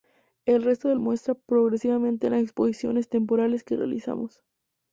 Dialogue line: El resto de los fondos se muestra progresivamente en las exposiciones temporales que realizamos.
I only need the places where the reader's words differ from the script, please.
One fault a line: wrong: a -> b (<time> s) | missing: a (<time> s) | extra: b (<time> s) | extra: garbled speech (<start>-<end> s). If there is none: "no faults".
missing: los fondos se (0.9 s)